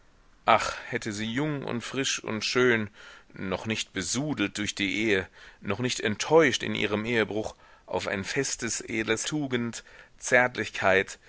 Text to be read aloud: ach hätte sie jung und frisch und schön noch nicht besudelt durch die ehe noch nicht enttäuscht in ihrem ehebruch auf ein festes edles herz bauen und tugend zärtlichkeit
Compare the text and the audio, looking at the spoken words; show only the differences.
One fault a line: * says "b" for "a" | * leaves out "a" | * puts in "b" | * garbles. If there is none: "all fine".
* leaves out "herz bauen und"